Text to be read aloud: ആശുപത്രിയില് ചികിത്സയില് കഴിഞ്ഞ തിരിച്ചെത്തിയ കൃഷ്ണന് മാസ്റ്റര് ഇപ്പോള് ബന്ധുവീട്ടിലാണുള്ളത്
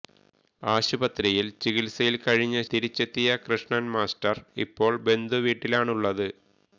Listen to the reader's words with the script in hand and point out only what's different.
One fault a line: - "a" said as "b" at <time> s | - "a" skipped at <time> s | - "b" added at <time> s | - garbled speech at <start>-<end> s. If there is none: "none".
none